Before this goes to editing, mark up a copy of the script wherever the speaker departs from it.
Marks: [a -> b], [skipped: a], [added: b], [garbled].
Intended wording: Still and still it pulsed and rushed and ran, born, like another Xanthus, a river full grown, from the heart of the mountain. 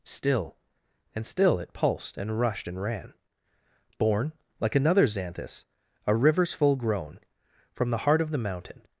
Still and still it pulsed and rushed and ran, born, like another Xanthus, a [river -> rivers] full grown, from the heart of the mountain.